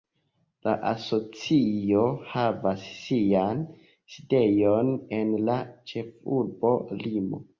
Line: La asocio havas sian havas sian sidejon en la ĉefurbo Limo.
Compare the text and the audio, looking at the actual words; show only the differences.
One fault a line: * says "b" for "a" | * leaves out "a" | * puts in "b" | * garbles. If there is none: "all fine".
* leaves out "havas sian"